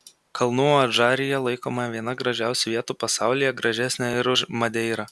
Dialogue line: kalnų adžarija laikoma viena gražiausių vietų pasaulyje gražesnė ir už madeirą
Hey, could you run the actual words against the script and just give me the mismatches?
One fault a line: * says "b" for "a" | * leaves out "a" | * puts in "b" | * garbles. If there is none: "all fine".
all fine